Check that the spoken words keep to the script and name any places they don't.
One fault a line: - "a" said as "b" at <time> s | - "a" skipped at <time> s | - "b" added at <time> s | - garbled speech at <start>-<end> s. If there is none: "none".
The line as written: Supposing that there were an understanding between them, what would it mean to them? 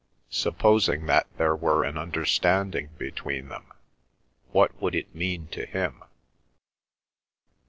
- "them" said as "him" at 5.7 s